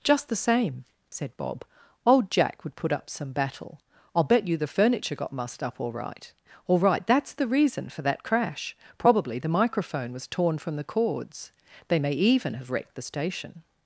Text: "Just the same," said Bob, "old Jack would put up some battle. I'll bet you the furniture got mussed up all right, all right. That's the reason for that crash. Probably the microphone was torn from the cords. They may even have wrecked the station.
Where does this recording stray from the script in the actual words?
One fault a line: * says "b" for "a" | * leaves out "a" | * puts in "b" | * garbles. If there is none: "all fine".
all fine